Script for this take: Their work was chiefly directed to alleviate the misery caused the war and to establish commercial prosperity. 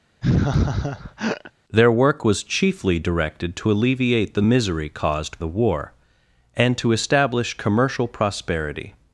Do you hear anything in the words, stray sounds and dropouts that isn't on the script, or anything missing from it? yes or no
yes